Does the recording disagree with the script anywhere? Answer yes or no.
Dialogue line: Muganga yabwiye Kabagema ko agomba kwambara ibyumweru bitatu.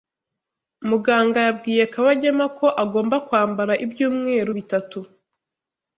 no